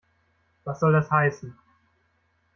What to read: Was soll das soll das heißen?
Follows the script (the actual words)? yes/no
no